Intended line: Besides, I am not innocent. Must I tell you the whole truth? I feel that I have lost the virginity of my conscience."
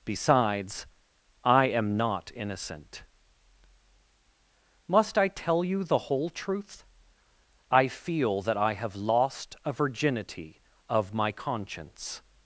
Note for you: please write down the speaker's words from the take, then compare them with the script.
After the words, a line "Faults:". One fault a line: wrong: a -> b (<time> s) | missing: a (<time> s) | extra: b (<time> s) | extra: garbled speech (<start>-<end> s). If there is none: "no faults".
Besides, I am not innocent. Must I tell you the whole truth? I feel that I have lost a virginity of my conscience."
Faults:
wrong: the -> a (9.6 s)